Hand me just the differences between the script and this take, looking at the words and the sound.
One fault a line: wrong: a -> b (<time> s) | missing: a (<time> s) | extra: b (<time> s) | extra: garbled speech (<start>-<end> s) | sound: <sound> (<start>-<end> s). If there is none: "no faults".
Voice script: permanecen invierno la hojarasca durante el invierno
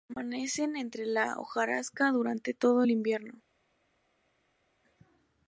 wrong: invierno -> entre (0.8 s)
extra: todo (2.5 s)